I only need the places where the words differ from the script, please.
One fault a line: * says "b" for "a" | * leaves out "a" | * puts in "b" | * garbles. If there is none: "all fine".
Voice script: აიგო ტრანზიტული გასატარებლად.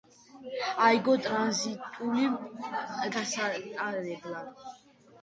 all fine